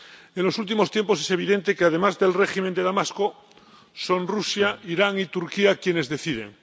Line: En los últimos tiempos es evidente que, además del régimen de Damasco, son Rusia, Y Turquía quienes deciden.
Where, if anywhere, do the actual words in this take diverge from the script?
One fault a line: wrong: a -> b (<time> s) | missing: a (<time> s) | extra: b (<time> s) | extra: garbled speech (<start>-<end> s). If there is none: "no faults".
extra: Irán (4.8 s)